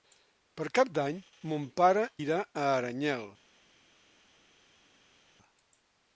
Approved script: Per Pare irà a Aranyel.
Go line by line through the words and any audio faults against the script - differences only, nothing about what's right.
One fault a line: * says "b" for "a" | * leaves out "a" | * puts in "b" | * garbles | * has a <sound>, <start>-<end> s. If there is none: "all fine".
* puts in "Cap d'Any mon"